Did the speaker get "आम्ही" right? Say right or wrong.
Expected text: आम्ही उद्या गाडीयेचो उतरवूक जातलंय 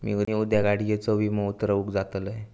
wrong